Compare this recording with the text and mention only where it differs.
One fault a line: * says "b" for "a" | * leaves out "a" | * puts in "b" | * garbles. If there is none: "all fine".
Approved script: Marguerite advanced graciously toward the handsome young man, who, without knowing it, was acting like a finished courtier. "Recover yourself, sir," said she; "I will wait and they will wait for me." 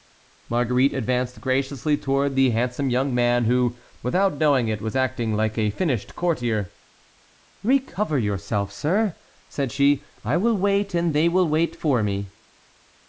all fine